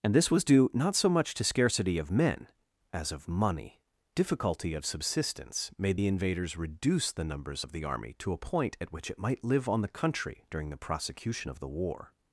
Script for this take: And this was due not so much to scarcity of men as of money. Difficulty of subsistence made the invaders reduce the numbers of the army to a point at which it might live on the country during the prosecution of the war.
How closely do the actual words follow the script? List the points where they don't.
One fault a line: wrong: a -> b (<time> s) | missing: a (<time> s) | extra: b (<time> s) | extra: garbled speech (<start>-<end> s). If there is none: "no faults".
no faults